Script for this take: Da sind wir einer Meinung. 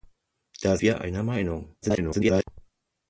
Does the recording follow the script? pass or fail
fail